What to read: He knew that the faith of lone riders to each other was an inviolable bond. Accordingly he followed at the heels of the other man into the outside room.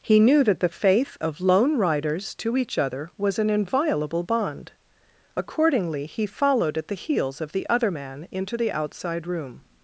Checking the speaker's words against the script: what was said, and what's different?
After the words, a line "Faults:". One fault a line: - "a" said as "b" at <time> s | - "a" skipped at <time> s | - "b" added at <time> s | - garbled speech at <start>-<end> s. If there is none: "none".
He knew that the faith of lone riders to each other was an inviolable bond. Accordingly he followed at the heels of the other man into the outside room.
Faults:
none